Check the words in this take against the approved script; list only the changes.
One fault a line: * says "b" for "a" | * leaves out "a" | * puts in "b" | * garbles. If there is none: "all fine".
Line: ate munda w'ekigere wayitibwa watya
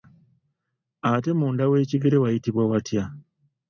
all fine